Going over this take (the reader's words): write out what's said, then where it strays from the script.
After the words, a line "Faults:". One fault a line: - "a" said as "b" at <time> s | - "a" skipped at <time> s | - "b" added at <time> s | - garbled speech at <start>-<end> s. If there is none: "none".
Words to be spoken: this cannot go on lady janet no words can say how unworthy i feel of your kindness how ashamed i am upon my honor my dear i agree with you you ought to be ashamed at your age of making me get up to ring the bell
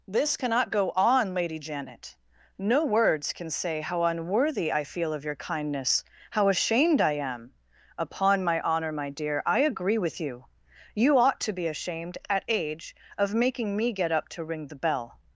this cannot go on lady janet no words can say how unworthy i feel of your kindness how ashamed i am upon my honor my dear i agree with you you ought to be ashamed at age of making me get up to ring the bell
Faults:
- "your" skipped at 12.4 s